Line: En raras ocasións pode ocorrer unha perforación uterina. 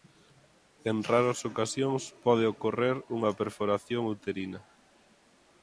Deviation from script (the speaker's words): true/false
false